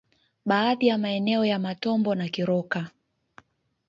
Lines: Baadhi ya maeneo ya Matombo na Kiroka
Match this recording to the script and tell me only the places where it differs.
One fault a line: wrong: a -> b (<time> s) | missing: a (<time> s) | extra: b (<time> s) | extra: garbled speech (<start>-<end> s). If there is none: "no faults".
no faults